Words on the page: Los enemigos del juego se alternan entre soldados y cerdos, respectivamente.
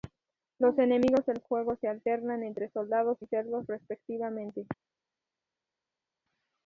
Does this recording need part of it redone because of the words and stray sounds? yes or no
no